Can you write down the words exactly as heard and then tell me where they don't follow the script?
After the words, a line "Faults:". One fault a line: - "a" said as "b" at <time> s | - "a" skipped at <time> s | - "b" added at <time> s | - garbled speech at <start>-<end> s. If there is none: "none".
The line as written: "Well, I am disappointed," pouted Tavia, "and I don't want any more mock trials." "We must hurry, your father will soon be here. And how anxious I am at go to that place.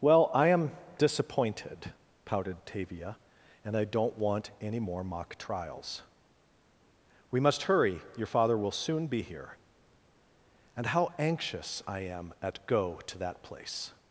"Well, I am disappointed," pouted Tavia, "and I don't want any more mock trials." "We must hurry, your father will soon be here. And how anxious I am at go to that place.
Faults:
none